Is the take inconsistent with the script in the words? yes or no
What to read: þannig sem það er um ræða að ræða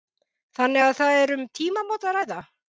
yes